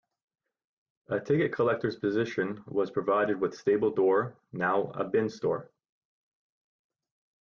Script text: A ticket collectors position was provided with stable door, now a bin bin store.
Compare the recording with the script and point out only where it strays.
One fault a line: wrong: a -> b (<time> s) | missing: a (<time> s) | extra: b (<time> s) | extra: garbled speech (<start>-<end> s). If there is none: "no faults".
missing: bin (5.3 s)